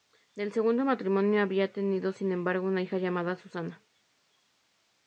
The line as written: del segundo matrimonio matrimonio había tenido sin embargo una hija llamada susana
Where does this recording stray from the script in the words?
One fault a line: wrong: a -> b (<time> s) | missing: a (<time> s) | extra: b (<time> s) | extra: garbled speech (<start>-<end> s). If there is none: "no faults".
missing: matrimonio (1.4 s)